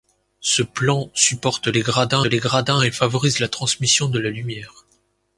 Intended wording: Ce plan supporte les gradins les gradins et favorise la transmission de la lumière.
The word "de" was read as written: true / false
true